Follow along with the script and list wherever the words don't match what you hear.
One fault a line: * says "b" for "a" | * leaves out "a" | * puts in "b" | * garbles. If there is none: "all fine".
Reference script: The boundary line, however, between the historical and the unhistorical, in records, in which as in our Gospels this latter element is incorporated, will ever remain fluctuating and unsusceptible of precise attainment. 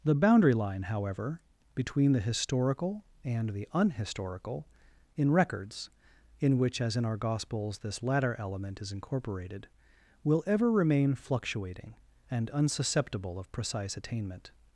all fine